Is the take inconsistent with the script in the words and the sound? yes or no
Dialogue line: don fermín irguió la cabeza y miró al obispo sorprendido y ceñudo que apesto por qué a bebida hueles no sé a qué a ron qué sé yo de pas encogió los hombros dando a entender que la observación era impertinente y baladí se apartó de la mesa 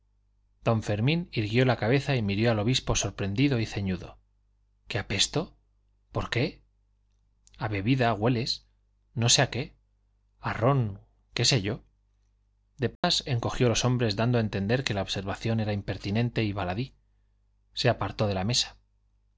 yes